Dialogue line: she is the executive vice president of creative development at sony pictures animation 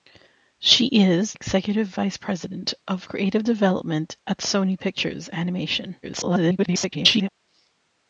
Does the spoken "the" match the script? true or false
false